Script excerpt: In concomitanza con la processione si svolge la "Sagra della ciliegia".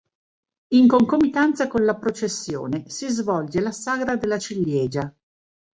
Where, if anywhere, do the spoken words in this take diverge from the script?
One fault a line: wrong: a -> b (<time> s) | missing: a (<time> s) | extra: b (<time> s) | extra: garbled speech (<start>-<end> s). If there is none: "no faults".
no faults